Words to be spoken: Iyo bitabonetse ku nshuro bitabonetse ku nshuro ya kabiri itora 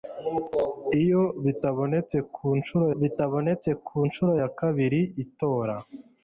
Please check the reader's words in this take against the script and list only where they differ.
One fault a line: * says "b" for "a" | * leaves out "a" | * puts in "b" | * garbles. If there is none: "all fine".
all fine